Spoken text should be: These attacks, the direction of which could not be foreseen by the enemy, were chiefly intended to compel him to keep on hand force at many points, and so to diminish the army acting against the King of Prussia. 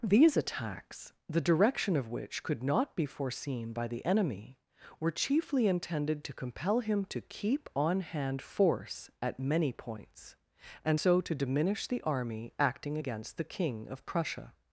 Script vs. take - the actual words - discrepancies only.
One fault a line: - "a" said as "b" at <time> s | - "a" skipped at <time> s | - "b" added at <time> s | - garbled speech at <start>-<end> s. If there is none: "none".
none